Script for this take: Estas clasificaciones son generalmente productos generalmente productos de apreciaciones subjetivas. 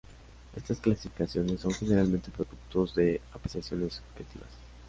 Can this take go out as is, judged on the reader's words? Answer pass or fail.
fail